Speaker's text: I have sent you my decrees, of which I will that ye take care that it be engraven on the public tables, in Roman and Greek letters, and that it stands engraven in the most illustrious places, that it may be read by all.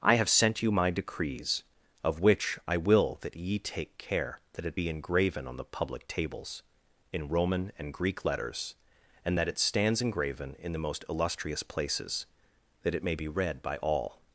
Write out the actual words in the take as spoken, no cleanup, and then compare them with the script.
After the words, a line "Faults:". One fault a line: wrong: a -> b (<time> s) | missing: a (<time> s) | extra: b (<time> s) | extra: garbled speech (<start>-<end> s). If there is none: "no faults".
I have sent you my decrees, of which I will that ye take care that it be engraven on the public tables, in Roman and Greek letters, and that it stands engraven in the most illustrious places, that it may be read by all.
Faults:
no faults